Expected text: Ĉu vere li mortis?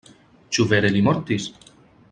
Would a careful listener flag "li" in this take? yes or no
no